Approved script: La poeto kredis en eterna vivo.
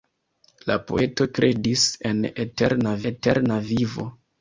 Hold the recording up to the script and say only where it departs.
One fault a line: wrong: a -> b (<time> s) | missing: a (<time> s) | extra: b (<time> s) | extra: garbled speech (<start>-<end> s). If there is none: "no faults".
extra: eterna (3.1 s)